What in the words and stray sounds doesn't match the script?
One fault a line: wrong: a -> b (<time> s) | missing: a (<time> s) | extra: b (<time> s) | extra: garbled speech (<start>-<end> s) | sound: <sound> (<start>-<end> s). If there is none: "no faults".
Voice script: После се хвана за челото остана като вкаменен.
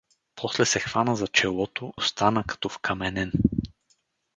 no faults